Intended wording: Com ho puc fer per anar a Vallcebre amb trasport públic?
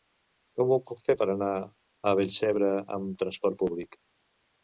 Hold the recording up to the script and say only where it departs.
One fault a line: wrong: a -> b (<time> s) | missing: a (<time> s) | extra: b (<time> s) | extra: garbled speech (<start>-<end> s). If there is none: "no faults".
no faults